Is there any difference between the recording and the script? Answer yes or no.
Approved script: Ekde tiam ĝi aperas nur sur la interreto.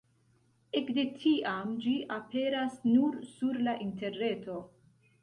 no